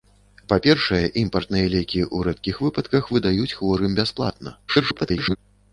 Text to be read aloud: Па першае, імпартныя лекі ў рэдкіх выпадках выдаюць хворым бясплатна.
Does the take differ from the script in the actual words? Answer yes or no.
yes